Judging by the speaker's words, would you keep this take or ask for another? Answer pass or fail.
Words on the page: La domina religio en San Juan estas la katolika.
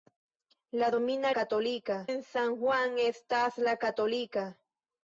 fail